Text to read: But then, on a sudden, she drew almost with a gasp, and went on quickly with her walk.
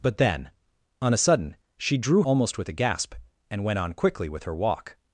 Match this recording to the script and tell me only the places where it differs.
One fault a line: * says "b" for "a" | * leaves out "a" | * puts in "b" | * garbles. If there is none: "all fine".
all fine